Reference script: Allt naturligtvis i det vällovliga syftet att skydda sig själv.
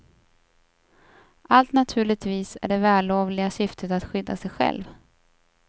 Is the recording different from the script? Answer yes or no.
no